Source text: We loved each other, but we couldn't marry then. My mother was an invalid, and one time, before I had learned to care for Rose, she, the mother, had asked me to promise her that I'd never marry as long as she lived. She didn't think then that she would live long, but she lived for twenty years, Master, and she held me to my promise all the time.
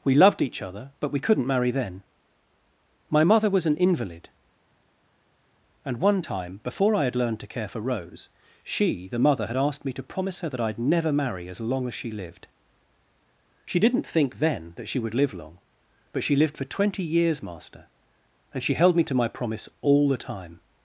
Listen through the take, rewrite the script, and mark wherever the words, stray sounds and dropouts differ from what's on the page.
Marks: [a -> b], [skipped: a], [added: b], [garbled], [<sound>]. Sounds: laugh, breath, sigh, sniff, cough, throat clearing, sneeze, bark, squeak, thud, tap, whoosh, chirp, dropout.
We loved each other, but we couldn't marry then. My mother was an invalid, and one time, before I had learned to care for Rose, she, the mother, had asked me to promise her that I'd never marry as long as she lived. She didn't think then that she would live long, but she lived for twenty years, Master, and she held me to my promise all the time.